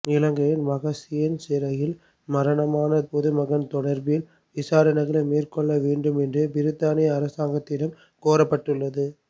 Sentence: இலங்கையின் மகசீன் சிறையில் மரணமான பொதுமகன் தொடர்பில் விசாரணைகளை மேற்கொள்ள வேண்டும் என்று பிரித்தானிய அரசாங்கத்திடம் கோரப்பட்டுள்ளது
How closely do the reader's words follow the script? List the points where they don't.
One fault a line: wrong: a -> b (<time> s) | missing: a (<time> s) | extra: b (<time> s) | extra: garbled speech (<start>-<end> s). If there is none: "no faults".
no faults